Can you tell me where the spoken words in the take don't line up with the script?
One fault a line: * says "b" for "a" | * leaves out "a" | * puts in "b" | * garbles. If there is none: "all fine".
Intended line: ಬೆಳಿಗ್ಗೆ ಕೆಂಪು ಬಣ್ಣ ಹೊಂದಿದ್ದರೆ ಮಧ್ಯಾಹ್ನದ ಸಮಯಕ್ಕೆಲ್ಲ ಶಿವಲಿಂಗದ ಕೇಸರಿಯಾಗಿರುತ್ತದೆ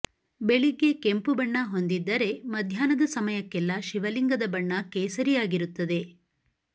* puts in "ಬಣ್ಣ"